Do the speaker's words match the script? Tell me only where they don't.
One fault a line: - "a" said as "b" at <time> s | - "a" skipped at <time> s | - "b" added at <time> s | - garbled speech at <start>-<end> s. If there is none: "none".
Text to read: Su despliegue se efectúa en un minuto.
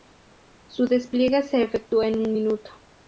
none